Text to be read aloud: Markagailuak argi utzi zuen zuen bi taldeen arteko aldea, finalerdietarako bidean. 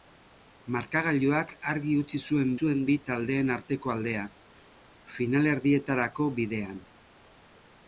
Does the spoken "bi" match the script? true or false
true